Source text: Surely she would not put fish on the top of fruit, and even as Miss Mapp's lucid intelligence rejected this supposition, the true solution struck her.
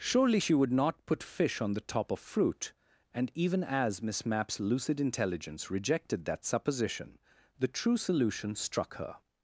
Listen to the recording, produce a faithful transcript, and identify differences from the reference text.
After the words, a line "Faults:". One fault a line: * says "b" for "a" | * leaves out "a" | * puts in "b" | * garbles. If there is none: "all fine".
Surely she would not put fish on the top of fruit, and even as Miss Mapp's lucid intelligence rejected that supposition, the true solution struck her.
Faults:
* says "that" for "this"